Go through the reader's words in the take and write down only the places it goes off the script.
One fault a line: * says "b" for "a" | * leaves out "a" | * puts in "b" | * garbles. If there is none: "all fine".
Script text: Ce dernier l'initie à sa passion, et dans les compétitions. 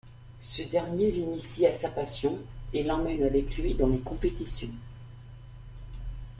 * puts in "l'emmène avec lui"